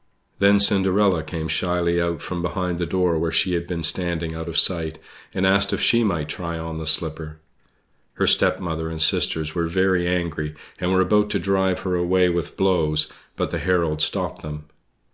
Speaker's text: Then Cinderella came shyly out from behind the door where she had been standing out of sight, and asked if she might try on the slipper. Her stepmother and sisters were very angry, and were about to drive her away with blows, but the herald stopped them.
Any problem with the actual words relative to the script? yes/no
no